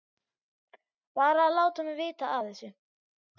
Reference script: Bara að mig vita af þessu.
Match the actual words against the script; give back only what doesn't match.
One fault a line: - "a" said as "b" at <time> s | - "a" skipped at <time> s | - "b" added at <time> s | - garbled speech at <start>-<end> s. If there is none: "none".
- "láta" added at 1.6 s